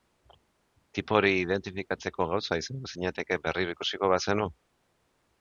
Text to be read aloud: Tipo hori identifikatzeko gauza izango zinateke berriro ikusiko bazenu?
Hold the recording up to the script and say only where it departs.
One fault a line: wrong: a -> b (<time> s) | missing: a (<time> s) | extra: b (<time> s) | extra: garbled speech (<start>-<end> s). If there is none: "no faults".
no faults